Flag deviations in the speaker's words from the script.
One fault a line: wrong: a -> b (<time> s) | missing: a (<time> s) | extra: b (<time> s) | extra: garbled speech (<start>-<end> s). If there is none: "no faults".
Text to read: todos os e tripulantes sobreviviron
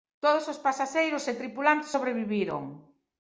extra: pasaxeiros (0.7 s)